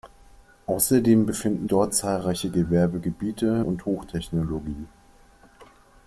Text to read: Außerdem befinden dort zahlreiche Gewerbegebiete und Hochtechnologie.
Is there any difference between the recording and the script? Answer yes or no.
no